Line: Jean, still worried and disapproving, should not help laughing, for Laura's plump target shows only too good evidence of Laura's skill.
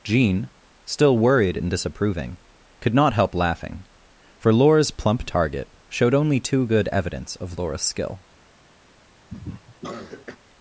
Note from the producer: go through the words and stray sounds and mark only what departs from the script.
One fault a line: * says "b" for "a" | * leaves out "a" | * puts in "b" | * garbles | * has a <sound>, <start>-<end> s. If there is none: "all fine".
* says "could" for "should"
* says "showed" for "shows"
* has a cough, 9.3-10.4 s